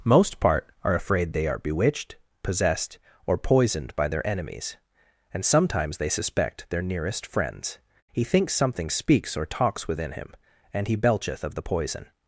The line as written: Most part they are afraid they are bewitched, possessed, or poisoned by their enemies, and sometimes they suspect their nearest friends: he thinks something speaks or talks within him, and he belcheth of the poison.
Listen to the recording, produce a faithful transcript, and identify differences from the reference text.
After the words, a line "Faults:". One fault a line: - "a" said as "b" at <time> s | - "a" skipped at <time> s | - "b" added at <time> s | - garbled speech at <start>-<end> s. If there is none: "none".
Most part are afraid they are bewitched, possessed, or poisoned by their enemies, and sometimes they suspect their nearest friends: he thinks something speaks or talks within him, and he belcheth of the poison.
Faults:
- "they" skipped at 0.7 s